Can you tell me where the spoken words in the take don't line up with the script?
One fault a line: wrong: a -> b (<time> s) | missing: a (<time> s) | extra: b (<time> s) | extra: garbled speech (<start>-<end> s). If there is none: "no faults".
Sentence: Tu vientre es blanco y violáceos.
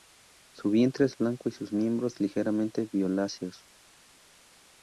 wrong: Tu -> Su (0.6 s)
extra: sus miembros ligeramente (1.5 s)